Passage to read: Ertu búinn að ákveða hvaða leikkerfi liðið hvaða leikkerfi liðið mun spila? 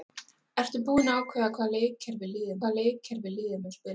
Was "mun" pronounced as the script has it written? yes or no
yes